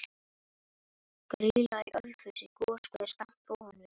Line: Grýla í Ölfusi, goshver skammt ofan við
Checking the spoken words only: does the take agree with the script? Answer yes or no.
yes